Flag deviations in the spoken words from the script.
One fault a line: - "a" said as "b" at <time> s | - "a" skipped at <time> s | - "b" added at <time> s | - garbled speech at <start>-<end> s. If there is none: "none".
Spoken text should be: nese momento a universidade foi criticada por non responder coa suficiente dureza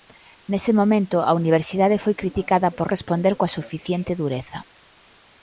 - "non" skipped at 2.9 s